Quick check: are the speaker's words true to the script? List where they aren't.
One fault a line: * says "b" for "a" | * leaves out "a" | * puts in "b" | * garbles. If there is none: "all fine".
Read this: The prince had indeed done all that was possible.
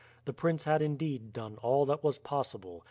all fine